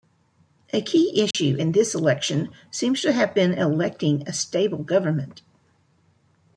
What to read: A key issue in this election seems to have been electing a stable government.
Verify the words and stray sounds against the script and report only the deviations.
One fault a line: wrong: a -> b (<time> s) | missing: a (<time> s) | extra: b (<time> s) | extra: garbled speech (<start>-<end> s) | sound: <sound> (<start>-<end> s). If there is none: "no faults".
sound: dropout (1.3-1.3 s)